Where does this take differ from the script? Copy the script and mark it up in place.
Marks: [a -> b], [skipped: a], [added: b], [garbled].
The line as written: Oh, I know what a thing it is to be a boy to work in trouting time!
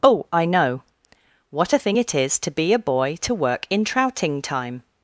Oh, I know what a thing it is to be a boy to work in trouting time!